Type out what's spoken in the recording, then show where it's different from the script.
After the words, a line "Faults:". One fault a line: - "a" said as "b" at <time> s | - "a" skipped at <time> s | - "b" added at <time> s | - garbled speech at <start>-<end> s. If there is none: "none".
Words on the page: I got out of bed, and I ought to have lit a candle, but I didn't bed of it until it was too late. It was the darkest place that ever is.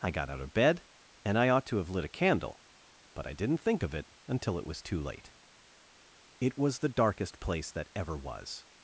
I got out of bed, and I ought to have lit a candle, but I didn't think of it until it was too late. It was the darkest place that ever was.
Faults:
- "bed" said as "think" at 3.6 s
- "is" said as "was" at 8.2 s